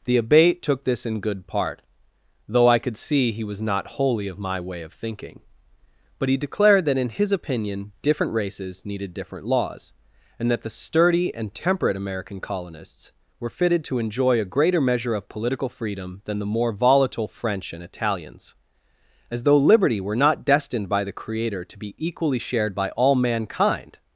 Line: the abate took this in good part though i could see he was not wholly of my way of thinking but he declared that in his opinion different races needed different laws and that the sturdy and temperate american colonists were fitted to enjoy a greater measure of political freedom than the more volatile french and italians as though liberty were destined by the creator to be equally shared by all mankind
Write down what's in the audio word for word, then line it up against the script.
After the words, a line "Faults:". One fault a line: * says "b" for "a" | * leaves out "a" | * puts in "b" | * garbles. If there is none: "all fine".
the abate took this in good part though i could see he was not wholly of my way of thinking but he declared that in his opinion different races needed different laws and that the sturdy and temperate american colonists were fitted to enjoy a greater measure of political freedom than the more volatile french and italians as though liberty were not destined by the creator to be equally shared by all mankind
Faults:
* puts in "not"